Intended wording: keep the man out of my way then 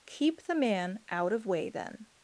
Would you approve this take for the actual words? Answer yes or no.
no